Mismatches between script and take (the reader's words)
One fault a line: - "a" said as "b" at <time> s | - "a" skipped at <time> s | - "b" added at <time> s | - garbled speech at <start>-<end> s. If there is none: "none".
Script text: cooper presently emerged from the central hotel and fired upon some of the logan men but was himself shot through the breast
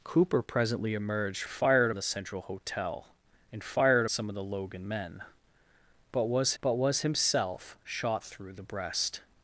- "from" said as "fired" at 1.5 s
- "upon" skipped at 4.0 s
- "but was" added at 6.6 s